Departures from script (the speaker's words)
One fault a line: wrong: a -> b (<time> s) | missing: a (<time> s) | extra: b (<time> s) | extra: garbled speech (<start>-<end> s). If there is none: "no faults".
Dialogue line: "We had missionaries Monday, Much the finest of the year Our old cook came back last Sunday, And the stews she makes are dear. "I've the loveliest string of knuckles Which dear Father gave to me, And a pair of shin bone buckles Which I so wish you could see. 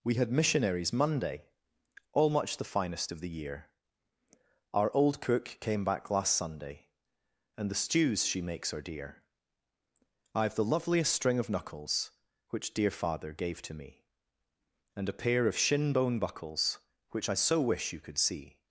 extra: all (2.1 s)